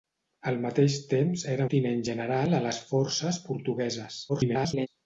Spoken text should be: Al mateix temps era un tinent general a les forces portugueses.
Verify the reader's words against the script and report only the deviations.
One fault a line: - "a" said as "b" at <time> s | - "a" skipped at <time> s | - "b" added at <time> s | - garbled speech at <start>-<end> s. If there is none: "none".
- "un" skipped at 1.7 s
- garbled speech at 4.3-4.9 s